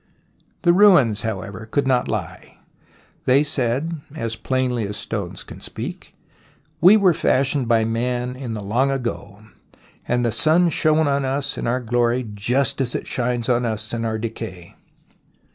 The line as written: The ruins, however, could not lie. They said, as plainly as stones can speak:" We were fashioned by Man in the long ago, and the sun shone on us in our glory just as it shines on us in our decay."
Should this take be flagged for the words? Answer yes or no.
no